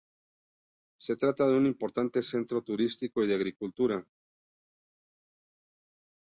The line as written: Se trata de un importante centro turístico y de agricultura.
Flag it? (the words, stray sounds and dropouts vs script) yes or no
no